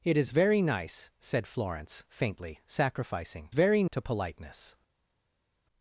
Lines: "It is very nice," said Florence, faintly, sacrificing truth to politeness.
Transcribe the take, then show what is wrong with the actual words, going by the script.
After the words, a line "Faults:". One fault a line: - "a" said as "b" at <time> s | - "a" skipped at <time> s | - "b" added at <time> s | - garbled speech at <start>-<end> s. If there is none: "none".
"It is very nice," said Florence, faintly, sacrificing very to politeness.
Faults:
- "truth" said as "very" at 3.5 s